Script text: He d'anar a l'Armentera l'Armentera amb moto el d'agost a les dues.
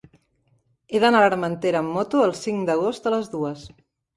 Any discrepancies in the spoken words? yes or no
yes